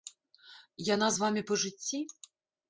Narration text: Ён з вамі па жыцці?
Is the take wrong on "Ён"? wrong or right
wrong